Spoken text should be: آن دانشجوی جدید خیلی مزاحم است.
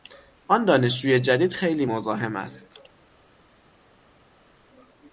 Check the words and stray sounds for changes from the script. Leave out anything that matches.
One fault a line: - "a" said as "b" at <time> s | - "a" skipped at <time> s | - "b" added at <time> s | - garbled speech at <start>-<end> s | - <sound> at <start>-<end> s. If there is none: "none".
none